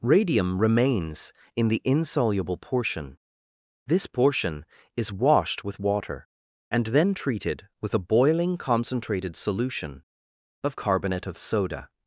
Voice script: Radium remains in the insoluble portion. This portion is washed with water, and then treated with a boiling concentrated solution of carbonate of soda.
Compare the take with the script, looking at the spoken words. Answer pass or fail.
pass